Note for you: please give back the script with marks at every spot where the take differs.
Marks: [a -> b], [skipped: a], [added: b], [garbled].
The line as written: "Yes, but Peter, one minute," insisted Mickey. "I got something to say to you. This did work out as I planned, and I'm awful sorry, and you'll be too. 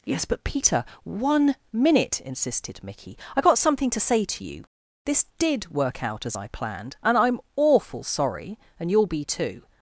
"Yes, but Peter, one minute," insisted Mickey. "I got something to say to you. This did work out as I planned, and I'm awful sorry, and you'll be too.